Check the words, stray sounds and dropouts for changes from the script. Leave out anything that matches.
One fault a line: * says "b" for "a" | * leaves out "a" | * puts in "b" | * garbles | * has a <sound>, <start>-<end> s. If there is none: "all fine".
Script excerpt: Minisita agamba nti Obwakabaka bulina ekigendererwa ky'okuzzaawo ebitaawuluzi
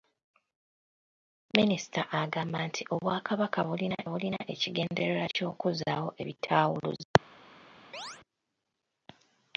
* puts in "bulina"
* has a chirp, 7.9-8.2 s